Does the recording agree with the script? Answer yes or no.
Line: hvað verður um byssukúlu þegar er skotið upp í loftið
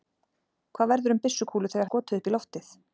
yes